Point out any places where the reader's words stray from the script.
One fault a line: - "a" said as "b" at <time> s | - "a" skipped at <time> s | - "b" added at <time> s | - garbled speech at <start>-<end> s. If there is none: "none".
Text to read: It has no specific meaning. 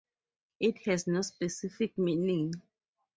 none